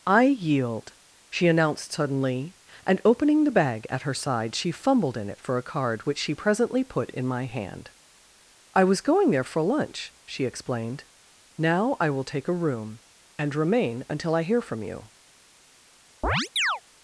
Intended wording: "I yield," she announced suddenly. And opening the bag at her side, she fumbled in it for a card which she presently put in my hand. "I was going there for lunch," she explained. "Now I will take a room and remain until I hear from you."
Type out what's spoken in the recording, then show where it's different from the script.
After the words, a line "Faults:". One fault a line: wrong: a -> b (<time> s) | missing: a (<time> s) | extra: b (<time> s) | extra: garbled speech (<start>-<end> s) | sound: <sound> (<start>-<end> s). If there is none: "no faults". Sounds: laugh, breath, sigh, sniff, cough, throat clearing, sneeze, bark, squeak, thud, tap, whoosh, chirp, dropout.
"I yield," she announced suddenly. And opening the bag at her side, she fumbled in it for a card which she presently put in my hand. "I was going there for lunch," she explained. "Now I will take a room and remain until I hear from you."
Faults:
sound: chirp (16.2-16.8 s)